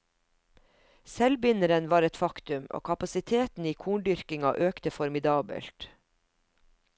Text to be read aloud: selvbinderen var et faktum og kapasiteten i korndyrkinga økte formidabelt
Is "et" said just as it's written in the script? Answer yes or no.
yes